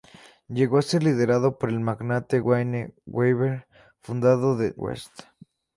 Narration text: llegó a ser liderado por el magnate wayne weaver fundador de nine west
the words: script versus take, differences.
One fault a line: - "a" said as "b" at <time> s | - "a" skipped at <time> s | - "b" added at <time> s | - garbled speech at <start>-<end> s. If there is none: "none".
- "nine" skipped at 4.7 s